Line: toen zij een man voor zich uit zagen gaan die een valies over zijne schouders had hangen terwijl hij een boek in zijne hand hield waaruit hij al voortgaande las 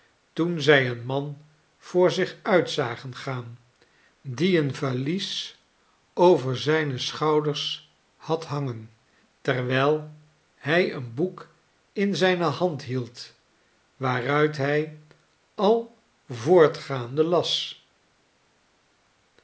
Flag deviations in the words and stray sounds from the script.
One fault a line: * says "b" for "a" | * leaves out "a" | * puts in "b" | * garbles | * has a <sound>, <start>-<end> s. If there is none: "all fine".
all fine